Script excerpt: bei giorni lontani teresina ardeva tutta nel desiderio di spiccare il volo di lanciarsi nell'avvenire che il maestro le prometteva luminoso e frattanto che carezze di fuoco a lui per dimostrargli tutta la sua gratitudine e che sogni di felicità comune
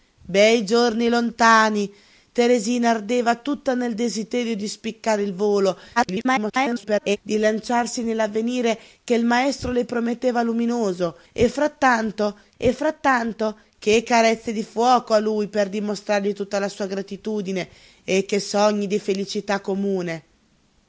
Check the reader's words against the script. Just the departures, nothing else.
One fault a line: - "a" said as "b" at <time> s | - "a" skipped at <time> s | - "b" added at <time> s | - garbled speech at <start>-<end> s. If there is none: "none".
- garbled speech at 6.0-7.2 s
- "e frattanto" added at 12.6 s